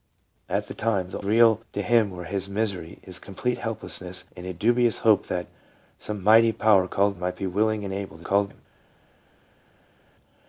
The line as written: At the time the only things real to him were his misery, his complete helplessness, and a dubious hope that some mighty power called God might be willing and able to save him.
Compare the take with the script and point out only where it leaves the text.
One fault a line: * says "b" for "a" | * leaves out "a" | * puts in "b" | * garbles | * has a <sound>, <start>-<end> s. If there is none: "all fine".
* leaves out "only things"
* leaves out "God"
* says "called" for "save"